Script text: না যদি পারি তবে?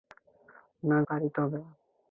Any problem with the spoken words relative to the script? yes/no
yes